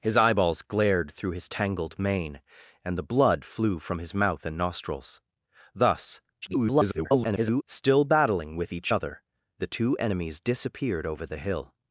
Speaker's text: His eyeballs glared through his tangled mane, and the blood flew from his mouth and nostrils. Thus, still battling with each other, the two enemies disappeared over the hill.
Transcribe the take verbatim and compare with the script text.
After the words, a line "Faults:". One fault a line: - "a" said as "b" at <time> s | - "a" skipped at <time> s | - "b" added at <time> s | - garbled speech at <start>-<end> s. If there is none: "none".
His eyeballs glared through his tangled mane, and the blood flew from his mouth and nostrils. Thus, [garbled] still battling with each other, the two enemies disappeared over the hill.
Faults:
- garbled speech at 6.4-7.6 s